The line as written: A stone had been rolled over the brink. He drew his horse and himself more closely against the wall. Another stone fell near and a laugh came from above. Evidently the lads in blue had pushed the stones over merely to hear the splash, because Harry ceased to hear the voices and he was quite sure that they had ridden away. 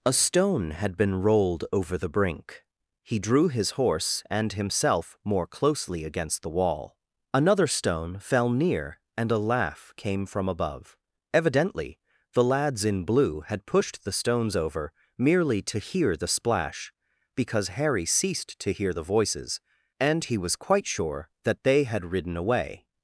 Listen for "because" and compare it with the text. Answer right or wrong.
right